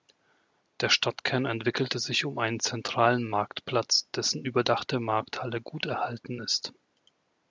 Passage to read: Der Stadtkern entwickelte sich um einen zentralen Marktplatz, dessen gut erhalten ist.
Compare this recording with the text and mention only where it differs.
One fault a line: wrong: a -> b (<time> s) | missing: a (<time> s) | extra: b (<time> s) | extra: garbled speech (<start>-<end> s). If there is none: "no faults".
extra: überdachte Markthalle (4.4 s)